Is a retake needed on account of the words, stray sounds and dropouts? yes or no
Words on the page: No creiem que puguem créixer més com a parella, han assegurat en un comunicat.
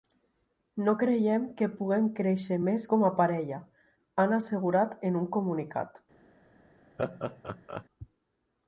yes